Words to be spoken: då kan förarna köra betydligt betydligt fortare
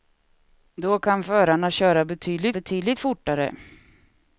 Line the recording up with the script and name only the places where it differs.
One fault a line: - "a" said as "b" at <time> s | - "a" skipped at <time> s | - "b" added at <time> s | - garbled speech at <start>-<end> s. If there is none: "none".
none